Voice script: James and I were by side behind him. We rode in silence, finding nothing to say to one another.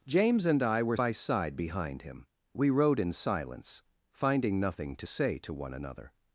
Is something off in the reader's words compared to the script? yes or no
no